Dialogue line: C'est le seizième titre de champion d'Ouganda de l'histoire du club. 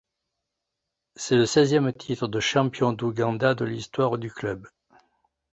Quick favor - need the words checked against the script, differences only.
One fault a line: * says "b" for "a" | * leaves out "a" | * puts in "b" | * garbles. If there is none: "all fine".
all fine